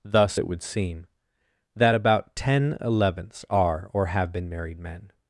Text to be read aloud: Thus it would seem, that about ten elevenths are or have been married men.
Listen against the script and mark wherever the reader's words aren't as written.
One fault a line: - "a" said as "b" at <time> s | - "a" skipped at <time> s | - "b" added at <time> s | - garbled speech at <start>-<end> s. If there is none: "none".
none